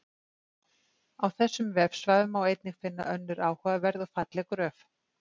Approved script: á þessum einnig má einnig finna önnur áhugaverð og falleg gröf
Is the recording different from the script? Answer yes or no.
yes